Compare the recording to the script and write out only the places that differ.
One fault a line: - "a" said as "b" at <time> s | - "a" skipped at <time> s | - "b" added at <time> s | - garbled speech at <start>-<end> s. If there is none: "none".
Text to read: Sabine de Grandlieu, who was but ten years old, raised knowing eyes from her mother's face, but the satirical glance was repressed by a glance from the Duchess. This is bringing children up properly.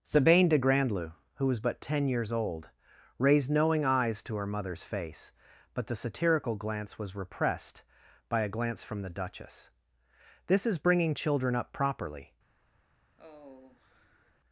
- "from" said as "to" at 4.2 s